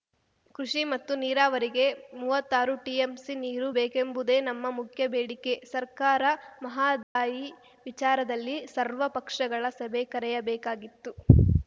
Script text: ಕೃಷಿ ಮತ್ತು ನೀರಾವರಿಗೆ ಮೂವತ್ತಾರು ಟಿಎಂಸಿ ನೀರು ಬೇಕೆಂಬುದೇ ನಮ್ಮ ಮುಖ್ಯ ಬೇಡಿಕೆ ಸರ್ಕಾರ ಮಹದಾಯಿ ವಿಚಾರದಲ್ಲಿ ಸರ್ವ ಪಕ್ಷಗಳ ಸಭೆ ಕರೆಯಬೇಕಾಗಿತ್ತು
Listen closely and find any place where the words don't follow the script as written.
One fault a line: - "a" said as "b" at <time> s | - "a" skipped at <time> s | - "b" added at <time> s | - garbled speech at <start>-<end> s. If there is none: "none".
none